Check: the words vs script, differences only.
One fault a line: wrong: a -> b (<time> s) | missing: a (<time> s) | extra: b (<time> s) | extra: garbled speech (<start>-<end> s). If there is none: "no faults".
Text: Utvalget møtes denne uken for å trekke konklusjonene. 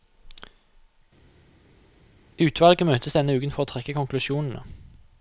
no faults